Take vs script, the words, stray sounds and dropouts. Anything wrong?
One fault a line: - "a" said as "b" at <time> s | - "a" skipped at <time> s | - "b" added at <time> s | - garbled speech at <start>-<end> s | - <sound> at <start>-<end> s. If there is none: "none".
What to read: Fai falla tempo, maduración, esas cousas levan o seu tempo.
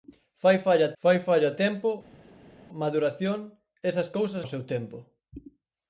- "fai falla" added at 1.0 s
- "levan" skipped at 4.4 s